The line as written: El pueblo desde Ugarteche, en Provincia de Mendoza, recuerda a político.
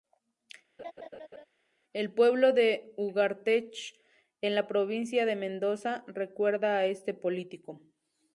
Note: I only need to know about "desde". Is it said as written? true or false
false